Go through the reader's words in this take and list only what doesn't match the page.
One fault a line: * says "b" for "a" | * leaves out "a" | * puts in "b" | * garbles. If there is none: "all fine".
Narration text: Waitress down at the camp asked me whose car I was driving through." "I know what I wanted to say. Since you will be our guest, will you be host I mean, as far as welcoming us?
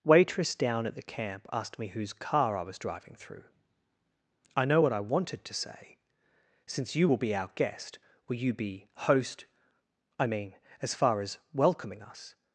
all fine